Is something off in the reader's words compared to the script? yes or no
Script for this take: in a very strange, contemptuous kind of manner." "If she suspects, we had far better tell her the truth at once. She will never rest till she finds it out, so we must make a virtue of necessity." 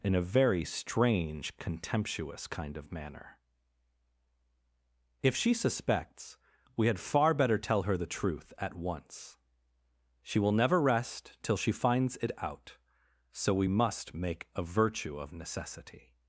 no